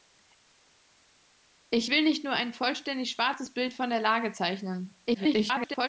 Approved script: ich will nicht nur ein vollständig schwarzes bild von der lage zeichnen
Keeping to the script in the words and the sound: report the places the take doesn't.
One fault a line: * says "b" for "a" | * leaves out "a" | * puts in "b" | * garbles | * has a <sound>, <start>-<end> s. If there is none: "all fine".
* garbles